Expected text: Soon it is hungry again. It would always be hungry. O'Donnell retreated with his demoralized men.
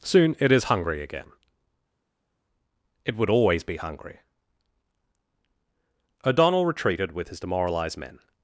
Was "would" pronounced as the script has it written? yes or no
yes